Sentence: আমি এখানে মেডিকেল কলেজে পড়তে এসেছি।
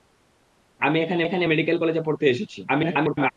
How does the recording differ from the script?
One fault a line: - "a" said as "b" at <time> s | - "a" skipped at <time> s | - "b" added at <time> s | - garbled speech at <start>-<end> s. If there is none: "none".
- "এখানে" added at 1.2 s
- garbled speech at 2.7-3.3 s